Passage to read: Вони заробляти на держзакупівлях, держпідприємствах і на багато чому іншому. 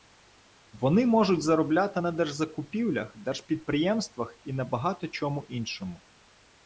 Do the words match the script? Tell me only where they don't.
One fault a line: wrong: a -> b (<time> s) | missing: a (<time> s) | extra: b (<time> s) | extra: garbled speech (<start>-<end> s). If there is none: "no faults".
extra: можуть (1.1 s)